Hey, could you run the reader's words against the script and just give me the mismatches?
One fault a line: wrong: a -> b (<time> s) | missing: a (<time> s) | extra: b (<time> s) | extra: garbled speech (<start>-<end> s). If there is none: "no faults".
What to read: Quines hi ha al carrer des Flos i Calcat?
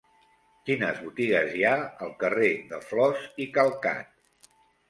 extra: botigues (1.1 s)
wrong: des -> de (2.7 s)